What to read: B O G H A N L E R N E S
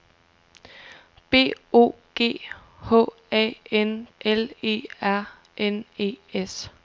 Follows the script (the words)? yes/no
yes